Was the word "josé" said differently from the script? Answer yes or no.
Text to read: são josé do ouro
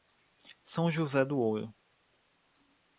no